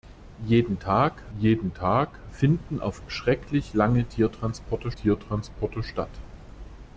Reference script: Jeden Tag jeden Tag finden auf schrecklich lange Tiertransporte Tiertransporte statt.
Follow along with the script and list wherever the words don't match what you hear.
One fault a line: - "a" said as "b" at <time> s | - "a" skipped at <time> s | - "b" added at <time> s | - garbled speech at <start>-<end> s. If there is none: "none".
none